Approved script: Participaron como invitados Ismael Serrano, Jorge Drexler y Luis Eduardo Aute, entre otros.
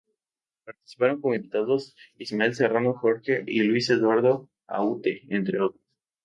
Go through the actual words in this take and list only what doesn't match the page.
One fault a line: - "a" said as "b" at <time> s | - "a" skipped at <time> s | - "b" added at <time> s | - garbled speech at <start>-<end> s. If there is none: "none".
- "Drexler" skipped at 3.4 s